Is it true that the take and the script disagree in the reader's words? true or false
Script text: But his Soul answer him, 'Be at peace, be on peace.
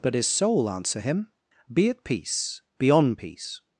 false